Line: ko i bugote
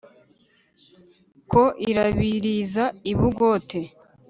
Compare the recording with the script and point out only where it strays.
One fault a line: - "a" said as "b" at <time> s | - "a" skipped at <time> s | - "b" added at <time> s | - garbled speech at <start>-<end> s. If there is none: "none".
- "irabiriza" added at 1.9 s